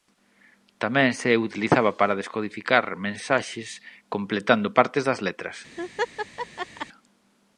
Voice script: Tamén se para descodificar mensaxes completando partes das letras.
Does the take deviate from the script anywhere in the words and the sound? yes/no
yes